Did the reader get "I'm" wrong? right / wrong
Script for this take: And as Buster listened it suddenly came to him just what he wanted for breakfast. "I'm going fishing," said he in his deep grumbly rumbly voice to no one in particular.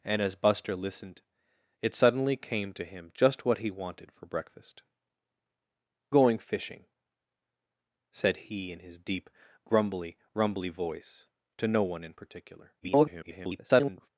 wrong